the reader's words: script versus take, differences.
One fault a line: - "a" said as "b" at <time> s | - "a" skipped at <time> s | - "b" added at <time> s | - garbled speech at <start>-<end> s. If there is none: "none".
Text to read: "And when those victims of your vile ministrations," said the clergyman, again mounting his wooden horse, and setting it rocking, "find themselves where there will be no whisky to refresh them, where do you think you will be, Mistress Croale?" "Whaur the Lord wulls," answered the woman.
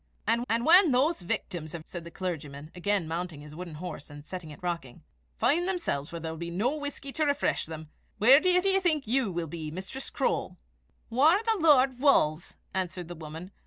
- "and" added at 0.5 s
- "your vile ministrations" skipped at 1.8 s
- "do you" added at 8.6 s